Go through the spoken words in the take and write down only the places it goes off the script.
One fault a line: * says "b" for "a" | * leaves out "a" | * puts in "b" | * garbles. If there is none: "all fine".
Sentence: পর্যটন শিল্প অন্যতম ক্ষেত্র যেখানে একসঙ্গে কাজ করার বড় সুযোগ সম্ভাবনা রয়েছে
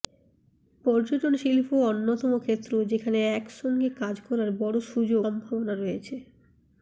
all fine